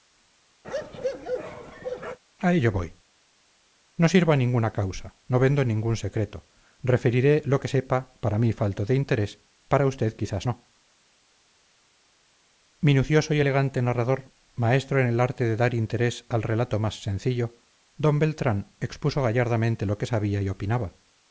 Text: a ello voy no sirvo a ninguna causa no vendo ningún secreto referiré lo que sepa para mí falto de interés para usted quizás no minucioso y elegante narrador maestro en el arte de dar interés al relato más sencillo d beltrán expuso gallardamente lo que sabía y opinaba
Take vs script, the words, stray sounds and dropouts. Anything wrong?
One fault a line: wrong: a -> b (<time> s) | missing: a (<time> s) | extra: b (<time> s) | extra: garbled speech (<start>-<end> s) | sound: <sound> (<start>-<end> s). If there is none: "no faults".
sound: bark (0.6-2.2 s)